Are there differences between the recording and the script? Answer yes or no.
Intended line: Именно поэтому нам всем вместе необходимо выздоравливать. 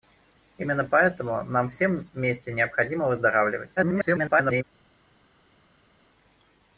yes